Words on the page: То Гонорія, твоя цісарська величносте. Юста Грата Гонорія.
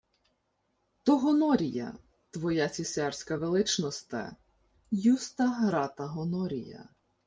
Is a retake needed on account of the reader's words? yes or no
no